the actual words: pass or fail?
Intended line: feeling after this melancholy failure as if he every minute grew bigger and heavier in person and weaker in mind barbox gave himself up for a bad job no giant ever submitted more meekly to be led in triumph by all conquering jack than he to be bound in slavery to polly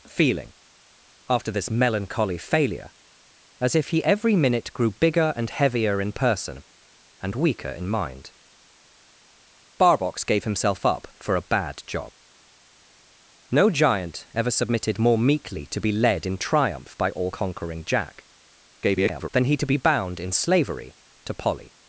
fail